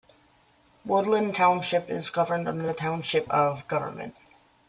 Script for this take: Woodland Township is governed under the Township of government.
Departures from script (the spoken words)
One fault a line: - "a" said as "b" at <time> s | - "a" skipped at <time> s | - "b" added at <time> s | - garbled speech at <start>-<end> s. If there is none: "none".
none